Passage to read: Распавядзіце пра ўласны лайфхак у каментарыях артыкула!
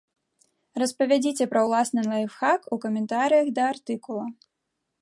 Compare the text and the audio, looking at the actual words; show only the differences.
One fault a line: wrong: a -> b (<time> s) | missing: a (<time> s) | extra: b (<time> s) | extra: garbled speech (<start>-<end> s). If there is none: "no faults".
extra: да (3.6 s)